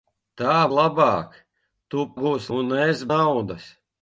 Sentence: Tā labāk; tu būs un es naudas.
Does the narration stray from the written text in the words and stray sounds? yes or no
no